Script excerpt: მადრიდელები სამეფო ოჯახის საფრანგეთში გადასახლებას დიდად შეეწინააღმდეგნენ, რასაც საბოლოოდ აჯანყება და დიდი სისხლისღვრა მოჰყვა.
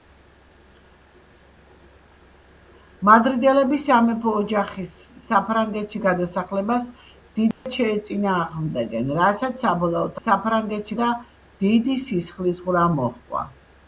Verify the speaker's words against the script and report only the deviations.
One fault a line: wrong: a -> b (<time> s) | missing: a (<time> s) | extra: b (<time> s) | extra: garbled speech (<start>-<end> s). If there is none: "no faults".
wrong: აჯანყება -> საფრანგეთში (10.2 s)